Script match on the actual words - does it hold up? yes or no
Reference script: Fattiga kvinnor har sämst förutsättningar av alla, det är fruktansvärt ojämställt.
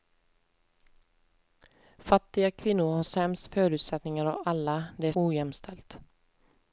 no